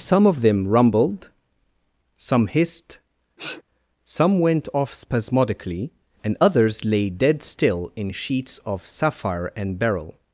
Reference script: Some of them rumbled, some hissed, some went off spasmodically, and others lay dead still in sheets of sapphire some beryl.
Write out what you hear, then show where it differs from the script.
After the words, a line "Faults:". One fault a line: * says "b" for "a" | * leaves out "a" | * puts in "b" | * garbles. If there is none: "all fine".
Some of them rumbled, some hissed, some went off spasmodically, and others lay dead still in sheets of sapphire and beryl.
Faults:
* says "and" for "some"